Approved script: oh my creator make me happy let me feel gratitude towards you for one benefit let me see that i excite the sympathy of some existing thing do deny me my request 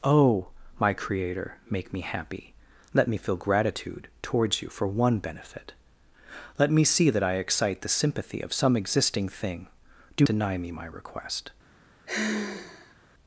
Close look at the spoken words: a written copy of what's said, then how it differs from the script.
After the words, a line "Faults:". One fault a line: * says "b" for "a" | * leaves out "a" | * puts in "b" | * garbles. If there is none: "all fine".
oh my creator make me happy let me feel gratitude towards you for one benefit let me see that i excite the sympathy of some existing thing do deny me my request
Faults:
all fine